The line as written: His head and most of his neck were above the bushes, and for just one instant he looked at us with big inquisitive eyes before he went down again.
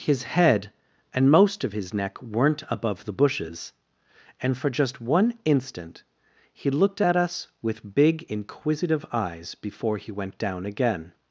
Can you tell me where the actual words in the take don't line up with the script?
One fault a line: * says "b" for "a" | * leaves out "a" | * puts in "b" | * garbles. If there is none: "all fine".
* says "weren't" for "were"